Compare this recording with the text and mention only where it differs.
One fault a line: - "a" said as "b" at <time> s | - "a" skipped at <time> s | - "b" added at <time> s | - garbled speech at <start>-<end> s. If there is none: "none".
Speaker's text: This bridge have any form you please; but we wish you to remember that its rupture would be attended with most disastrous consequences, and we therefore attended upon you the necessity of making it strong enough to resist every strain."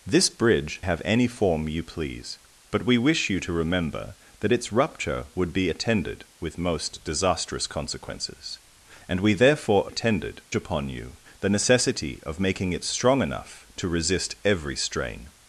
none